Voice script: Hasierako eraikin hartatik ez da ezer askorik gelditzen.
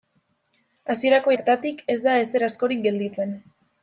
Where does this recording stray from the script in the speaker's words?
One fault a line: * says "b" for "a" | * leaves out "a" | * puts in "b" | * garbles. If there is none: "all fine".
* leaves out "eraikin"